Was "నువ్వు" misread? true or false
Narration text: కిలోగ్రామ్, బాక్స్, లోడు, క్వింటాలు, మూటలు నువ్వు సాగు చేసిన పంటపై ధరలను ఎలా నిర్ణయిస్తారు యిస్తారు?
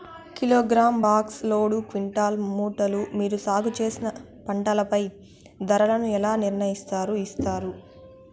true